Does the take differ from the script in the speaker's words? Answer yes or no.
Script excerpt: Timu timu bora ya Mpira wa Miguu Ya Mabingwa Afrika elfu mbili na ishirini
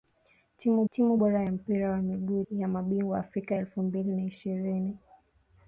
no